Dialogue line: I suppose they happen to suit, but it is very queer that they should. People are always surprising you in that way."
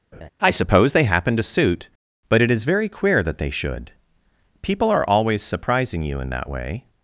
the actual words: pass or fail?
pass